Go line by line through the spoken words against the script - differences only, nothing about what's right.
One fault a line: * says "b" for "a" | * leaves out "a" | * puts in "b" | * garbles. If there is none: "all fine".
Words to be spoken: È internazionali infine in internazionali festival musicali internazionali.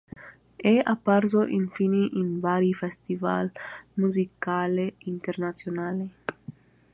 * says "apparso" for "internazionali"
* says "vari" for "internazionali"